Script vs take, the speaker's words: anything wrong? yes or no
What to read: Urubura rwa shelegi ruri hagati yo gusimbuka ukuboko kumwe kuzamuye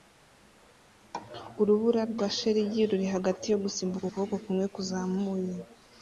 no